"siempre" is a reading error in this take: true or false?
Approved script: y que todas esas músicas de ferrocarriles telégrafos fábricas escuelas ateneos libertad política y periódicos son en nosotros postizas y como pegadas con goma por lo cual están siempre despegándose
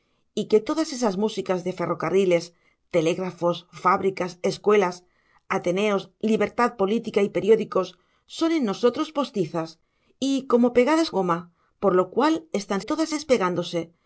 true